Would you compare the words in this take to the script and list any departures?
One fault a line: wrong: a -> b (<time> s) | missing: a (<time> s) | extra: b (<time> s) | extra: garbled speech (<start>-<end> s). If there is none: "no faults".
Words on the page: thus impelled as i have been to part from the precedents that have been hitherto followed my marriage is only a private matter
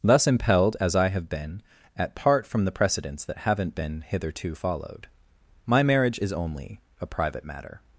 wrong: to -> at (2.0 s)
wrong: have -> haven't (3.4 s)